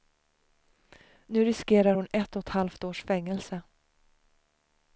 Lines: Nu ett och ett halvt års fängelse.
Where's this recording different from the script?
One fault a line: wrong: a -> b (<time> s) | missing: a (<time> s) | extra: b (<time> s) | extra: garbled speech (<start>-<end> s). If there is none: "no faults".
extra: riskerar hon (1.4 s)